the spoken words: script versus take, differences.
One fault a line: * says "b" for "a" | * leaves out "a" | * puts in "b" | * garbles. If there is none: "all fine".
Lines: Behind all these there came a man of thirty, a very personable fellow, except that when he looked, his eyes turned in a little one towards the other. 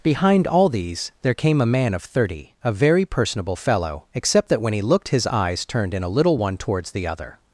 all fine